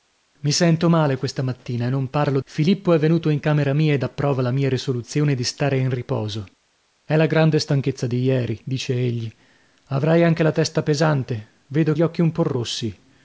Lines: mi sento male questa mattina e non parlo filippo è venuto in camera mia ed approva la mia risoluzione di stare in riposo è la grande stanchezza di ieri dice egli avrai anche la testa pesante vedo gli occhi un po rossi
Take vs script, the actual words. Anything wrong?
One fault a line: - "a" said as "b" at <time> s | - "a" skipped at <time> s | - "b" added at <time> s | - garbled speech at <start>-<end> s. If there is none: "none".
none